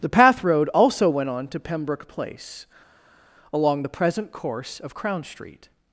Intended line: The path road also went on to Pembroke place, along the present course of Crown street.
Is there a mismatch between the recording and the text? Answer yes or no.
no